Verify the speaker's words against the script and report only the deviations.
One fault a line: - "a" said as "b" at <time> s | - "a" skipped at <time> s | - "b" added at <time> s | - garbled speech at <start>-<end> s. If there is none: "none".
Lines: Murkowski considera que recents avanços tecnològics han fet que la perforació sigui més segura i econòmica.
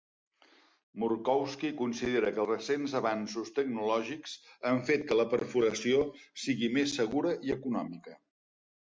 none